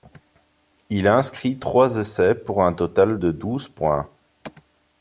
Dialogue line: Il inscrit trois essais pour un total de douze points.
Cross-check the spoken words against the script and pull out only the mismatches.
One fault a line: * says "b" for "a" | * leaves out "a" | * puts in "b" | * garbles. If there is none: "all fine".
all fine